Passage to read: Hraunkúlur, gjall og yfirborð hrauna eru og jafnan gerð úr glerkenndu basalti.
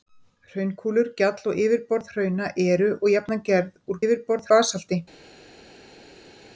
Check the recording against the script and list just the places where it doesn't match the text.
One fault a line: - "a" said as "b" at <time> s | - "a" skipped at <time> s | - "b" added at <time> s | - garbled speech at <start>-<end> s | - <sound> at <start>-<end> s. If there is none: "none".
- "glerkenndu" said as "yfirborð" at 4.0 s